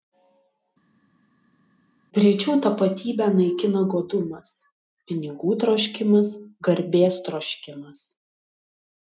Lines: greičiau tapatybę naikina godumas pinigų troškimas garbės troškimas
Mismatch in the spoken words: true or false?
false